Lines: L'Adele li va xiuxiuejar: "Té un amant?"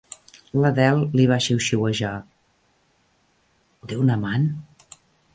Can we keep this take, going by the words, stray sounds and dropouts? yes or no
yes